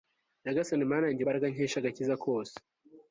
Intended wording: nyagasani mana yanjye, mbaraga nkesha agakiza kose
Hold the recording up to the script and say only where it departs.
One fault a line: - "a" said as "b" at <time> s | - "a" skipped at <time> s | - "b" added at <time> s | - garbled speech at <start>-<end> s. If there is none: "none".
none